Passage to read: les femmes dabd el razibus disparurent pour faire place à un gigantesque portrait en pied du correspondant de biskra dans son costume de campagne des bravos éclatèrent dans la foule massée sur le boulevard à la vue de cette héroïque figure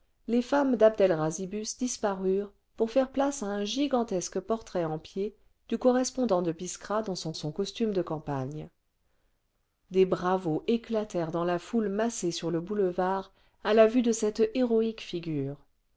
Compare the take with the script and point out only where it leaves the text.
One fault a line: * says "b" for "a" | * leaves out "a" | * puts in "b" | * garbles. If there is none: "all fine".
* puts in "son"